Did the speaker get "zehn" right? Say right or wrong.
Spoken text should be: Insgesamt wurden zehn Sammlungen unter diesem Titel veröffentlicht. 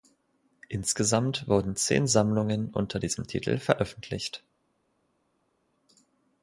right